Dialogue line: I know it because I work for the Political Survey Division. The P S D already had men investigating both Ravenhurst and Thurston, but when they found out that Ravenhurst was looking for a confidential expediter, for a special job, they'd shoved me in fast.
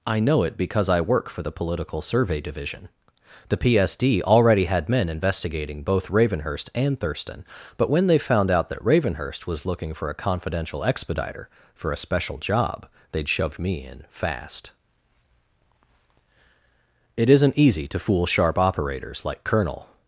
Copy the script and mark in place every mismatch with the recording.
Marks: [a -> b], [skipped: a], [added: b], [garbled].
I know it because I work for the Political Survey Division. The P S D already had men investigating both Ravenhurst and Thurston, but when they found out that Ravenhurst was looking for a confidential expediter, for a special job, they'd shoved me in fast. [added: It isn't easy to fool sharp operators like Colonel]